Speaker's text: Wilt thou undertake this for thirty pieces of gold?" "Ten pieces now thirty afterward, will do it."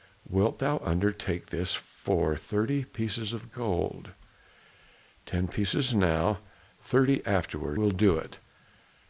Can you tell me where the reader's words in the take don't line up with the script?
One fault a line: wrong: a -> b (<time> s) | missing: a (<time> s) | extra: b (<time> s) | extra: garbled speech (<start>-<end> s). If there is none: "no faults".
no faults